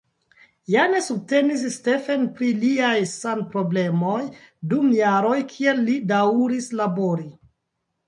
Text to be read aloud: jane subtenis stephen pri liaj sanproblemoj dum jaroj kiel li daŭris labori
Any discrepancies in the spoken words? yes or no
no